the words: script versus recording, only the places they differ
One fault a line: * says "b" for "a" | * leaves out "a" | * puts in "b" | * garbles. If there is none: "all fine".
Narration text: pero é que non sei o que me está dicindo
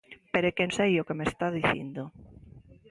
* leaves out "non"